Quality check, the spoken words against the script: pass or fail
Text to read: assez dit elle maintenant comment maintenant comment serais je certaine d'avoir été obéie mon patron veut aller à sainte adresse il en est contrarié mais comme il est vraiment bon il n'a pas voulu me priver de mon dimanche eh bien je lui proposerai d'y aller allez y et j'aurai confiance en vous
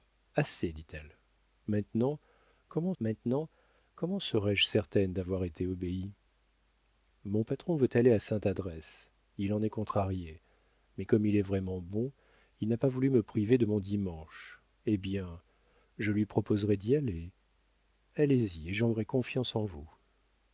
pass